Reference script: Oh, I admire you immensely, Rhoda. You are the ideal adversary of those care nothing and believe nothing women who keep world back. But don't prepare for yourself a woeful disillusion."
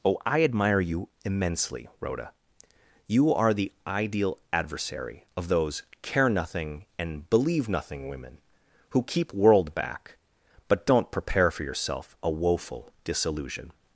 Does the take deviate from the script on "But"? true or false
false